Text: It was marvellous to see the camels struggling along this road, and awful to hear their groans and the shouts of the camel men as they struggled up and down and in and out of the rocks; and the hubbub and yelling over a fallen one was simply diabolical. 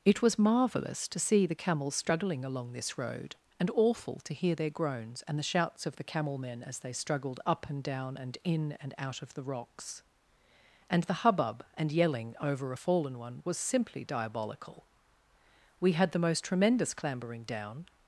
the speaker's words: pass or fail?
fail